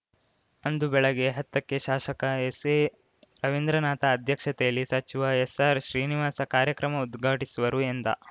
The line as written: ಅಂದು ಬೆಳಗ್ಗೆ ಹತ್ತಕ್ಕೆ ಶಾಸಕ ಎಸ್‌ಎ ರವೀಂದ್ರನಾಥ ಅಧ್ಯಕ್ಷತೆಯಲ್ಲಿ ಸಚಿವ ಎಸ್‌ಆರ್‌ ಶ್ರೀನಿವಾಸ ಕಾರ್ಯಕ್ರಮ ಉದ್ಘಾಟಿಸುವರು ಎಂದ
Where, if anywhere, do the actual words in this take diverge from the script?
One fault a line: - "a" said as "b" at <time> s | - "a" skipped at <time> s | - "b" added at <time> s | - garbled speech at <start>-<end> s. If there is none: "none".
none